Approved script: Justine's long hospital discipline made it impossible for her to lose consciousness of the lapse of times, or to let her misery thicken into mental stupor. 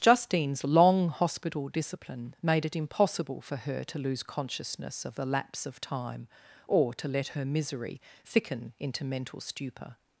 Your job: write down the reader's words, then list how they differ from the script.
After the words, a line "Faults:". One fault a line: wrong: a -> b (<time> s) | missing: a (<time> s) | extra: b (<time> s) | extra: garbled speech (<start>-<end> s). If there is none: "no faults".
Justine's long hospital discipline made it impossible for her to lose consciousness of the lapse of time, or to let her misery thicken into mental stupor.
Faults:
wrong: times -> time (5.8 s)